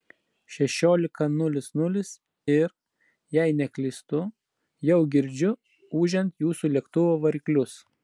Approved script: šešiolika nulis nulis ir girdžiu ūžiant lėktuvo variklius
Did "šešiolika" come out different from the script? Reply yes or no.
no